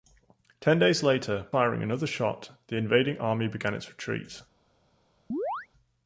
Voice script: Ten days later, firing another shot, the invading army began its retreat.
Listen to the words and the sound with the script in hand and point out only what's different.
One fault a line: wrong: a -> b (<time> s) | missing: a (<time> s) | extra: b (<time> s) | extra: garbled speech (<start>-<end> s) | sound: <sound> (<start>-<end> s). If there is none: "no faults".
sound: chirp (5.3-5.7 s)